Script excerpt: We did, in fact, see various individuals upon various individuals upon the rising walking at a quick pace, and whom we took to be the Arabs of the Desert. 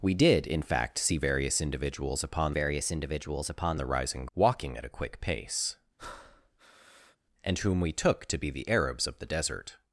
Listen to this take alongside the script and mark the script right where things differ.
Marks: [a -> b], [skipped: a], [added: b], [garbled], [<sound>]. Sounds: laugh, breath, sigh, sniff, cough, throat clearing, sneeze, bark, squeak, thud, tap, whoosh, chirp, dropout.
We did, in fact, see various individuals upon various individuals upon the rising walking at a quick pace, [breath] and whom we took to be the Arabs of the Desert.